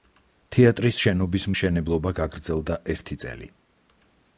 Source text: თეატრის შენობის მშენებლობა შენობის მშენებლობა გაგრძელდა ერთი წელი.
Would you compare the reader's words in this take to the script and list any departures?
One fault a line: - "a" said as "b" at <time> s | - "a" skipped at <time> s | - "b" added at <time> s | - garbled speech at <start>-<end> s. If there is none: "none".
- "შენობის მშენებლობა" skipped at 2.2 s